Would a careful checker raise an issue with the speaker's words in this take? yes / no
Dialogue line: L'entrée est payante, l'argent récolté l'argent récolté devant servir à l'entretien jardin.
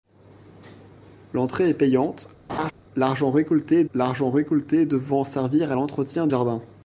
no